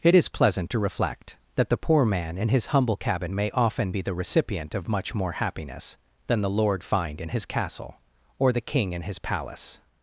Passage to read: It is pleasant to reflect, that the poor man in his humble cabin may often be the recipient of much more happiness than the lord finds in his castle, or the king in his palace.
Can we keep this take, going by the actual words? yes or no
no